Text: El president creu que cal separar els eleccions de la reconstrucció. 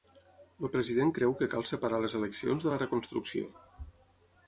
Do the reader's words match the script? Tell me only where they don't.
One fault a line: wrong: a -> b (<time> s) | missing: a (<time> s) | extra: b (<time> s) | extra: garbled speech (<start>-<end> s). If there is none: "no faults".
wrong: els -> les (2.1 s)